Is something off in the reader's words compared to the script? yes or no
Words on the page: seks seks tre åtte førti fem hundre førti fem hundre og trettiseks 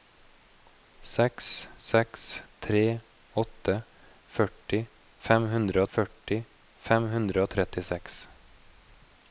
no